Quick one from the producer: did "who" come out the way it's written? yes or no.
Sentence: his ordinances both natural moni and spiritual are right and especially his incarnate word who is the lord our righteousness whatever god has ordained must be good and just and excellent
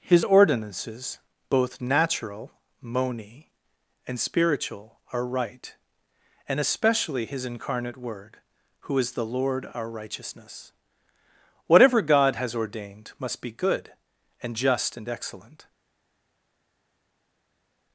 yes